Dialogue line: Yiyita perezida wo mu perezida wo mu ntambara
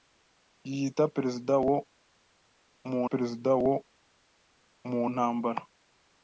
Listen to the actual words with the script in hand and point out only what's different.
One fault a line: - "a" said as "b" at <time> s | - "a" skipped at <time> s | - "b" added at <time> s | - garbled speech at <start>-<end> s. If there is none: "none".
none